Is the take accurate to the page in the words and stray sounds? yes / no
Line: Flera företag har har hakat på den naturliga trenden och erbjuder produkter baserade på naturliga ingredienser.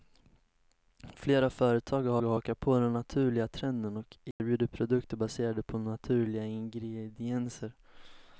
no